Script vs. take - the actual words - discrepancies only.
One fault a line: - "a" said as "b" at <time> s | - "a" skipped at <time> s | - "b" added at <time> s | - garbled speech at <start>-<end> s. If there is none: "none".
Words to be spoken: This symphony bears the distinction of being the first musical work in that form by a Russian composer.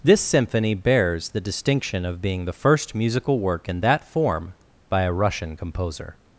none